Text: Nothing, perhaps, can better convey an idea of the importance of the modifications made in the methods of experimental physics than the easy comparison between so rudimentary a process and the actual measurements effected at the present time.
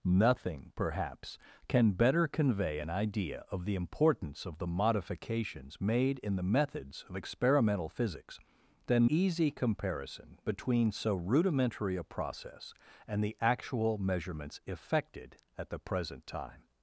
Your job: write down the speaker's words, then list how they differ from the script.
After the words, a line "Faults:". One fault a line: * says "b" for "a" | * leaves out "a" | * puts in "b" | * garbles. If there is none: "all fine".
Nothing, perhaps, can better convey an idea of the importance of the modifications made in the methods of experimental physics than easy comparison between so rudimentary a process and the actual measurements effected at the present time.
Faults:
* leaves out "the"